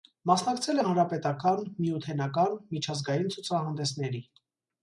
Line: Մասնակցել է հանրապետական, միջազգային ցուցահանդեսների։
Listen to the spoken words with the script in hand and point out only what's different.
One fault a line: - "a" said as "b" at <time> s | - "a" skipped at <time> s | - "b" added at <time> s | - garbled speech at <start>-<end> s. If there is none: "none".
- "միութենական" added at 1.8 s